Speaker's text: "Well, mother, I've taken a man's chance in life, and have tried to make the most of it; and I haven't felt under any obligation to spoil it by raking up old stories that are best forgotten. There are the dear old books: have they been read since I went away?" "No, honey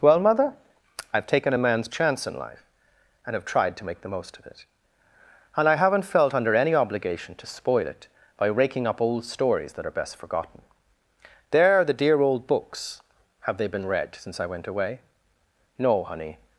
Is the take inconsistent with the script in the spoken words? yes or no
no